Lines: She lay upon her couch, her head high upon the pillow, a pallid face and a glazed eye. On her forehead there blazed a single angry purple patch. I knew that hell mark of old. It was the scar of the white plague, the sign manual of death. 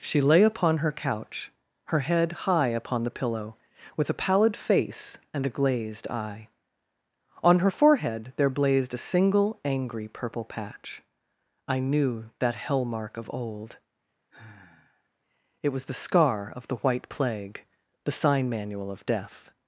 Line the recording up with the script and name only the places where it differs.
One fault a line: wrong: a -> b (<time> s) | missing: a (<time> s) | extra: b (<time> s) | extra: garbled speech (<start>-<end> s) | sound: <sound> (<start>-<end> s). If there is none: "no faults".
extra: with (4.0 s)
sound: sigh (14.3-15.1 s)